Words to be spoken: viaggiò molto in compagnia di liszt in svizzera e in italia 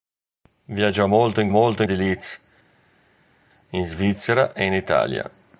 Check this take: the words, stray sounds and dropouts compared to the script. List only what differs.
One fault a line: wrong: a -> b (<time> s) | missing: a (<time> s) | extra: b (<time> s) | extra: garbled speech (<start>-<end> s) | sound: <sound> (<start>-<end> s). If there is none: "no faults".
wrong: compagnia -> molto (1.5 s)